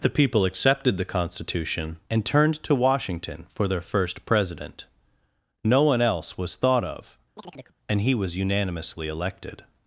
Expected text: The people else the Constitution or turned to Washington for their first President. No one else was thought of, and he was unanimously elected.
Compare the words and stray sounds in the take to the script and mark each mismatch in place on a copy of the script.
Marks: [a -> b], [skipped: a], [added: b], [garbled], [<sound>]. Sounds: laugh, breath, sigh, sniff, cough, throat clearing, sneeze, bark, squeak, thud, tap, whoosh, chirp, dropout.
The people [else -> accepted] the Constitution [or -> and] turned to Washington for their first President. No one else was thought of, [chirp] and he was unanimously elected.